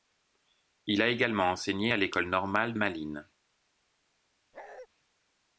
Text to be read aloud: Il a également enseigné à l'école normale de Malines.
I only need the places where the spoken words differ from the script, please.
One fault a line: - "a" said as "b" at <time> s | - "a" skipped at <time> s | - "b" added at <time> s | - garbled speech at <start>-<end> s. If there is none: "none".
- "de" skipped at 2.7 s